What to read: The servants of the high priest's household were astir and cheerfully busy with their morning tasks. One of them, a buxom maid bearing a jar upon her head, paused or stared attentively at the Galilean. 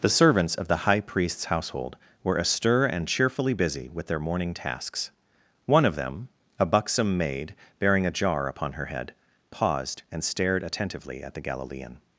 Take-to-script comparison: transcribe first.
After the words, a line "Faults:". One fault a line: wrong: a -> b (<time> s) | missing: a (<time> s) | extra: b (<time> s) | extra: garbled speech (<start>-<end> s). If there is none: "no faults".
The servants of the high priest's household were astir and cheerfully busy with their morning tasks. One of them, a buxom maid bearing a jar upon her head, paused and stared attentively at the Galilean.
Faults:
wrong: or -> and (10.1 s)